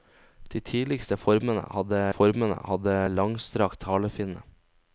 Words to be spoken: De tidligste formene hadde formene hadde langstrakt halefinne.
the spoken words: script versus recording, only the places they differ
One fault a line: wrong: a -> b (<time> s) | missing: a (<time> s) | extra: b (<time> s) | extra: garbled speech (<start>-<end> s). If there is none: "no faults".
no faults